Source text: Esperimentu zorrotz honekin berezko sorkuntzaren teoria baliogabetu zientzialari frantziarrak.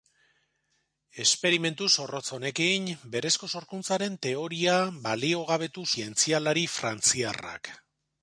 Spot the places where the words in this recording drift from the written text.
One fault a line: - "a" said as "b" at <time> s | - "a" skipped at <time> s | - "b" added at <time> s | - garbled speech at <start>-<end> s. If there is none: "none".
none